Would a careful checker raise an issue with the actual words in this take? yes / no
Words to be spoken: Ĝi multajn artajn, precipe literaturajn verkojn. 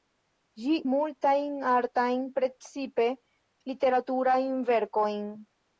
no